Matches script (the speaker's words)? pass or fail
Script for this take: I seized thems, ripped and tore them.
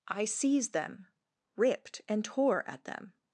fail